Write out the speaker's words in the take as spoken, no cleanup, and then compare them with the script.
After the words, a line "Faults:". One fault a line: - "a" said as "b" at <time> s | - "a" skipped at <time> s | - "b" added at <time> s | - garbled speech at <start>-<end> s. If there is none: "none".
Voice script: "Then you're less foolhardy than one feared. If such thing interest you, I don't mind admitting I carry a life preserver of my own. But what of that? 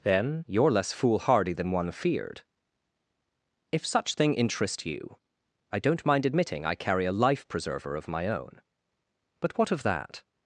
"Then you're less foolhardy than one feared. If such thing interest you, I don't mind admitting I carry a life preserver of my own. But what of that?
Faults:
none